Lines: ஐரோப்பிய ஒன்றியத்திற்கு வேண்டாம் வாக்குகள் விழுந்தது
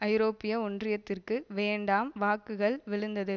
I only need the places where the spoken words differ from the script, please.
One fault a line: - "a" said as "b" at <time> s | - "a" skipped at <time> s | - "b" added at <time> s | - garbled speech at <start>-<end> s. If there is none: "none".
none